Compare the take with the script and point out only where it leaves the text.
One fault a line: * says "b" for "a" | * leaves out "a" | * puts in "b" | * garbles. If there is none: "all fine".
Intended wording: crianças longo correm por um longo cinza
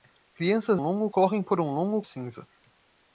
all fine